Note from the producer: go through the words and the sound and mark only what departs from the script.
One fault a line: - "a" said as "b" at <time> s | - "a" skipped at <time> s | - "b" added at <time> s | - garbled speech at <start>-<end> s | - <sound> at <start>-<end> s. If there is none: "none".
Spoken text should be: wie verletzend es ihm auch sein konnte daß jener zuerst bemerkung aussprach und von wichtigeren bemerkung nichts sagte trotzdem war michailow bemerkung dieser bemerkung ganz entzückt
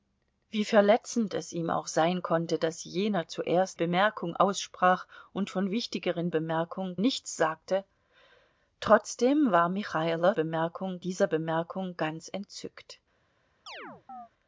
- chirp at 13.7-14.3 s